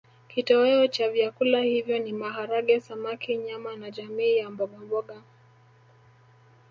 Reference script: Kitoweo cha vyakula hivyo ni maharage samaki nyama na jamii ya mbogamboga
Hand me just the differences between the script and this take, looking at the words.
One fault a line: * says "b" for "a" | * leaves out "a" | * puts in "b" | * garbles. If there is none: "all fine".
all fine